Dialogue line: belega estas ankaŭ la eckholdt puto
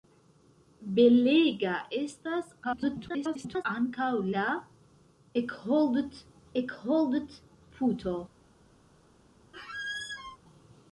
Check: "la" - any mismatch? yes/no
no